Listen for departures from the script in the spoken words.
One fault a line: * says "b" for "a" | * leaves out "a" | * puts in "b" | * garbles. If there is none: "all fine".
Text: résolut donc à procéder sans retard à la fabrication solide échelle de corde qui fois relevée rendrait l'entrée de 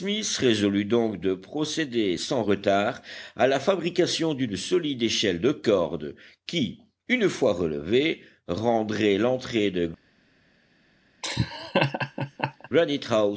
* says "de" for "à"
* puts in "d'une"
* puts in "une"